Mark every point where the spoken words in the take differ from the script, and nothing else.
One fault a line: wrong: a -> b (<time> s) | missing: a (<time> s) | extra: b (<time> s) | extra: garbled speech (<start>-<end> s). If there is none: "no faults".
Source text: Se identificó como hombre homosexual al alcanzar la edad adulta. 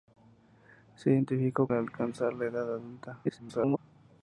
missing: como hombre homosexual (1.7 s)
extra: garbled speech (3.2-3.8 s)